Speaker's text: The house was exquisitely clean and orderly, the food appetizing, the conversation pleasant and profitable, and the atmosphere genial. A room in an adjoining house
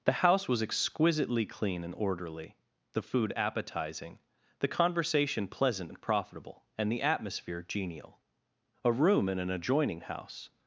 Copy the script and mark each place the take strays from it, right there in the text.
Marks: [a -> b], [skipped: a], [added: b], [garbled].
The house was exquisitely clean and orderly, the food appetizing, the conversation pleasant and profitable, and the atmosphere genial. A room in an adjoining house